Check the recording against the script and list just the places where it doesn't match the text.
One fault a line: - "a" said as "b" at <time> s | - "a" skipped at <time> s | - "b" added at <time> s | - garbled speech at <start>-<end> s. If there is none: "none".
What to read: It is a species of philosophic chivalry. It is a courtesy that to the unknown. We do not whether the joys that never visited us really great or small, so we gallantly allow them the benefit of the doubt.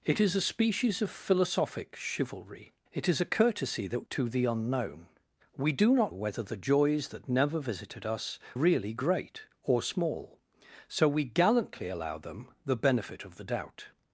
none